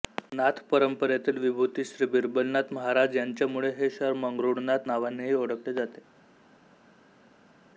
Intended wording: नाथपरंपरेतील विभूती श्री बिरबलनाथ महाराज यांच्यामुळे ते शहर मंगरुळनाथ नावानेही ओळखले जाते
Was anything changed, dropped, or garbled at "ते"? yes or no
yes